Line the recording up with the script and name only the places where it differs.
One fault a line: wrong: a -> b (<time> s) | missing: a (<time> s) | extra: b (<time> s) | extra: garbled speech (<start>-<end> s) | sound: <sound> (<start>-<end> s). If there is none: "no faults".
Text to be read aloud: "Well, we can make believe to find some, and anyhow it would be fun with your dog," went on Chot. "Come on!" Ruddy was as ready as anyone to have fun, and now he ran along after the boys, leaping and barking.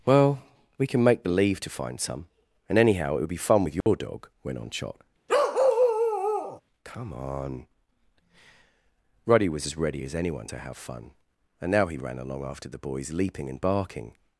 sound: dropout (3.8-3.9 s)
sound: bark (5.3-6.6 s)